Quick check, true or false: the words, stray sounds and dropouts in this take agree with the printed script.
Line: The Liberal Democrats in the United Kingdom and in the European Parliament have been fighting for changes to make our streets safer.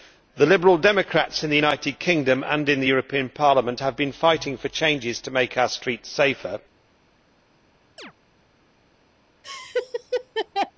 false